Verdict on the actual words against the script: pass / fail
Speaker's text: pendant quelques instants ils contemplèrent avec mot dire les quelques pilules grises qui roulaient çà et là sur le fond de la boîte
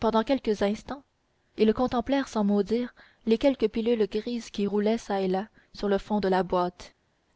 fail